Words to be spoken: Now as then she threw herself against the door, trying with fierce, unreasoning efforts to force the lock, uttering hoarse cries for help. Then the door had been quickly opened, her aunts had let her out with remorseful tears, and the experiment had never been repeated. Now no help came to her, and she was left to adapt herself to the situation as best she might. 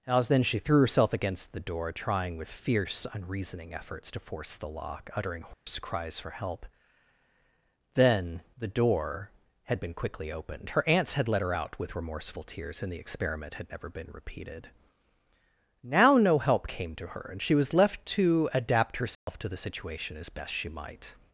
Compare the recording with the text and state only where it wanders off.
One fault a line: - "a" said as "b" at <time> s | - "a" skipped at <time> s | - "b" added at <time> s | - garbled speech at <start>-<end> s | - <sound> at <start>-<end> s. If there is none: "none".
- "Now" skipped at 0.1 s
- dropout at 5.5-5.7 s
- dropout at 19.1-19.3 s